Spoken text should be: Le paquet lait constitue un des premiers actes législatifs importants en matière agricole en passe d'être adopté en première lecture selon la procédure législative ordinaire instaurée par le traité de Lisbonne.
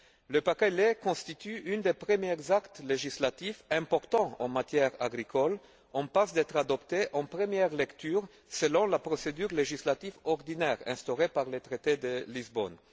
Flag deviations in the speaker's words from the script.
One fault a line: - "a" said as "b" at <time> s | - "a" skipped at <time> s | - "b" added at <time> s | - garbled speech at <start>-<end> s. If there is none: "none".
none